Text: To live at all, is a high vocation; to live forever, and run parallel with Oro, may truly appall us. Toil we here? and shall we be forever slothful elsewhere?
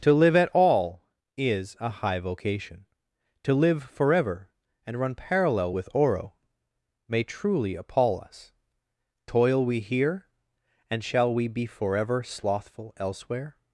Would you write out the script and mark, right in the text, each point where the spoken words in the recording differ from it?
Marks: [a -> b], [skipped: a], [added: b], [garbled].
To live at all, is a high vocation; to live forever, and run parallel with Oro, may truly appall us. Toil we here? and shall we be forever slothful elsewhere?